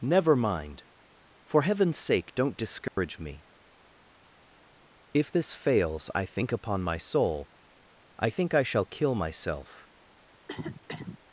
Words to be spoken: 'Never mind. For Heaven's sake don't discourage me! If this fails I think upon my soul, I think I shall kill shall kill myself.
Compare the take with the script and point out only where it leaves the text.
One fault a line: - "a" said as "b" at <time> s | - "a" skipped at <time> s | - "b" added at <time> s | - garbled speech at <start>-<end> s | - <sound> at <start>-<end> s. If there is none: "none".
- dropout at 2.9-3.0 s
- "shall kill" skipped at 9.1 s
- cough at 10.3-11.2 s